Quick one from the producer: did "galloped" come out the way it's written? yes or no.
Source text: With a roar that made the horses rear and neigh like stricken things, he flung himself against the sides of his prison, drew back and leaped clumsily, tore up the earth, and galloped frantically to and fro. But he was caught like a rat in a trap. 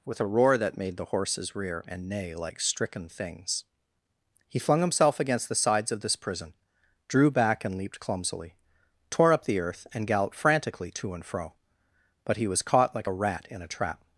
yes